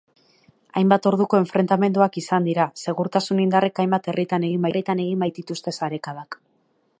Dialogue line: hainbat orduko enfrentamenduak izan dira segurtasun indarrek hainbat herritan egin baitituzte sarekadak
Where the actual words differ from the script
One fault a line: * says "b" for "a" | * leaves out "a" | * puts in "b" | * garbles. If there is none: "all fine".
* puts in "herritan egin"